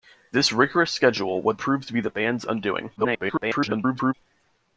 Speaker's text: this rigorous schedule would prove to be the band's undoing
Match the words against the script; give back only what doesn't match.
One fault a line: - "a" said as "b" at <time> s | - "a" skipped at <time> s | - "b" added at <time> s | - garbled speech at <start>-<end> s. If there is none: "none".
- garbled speech at 3.0-4.1 s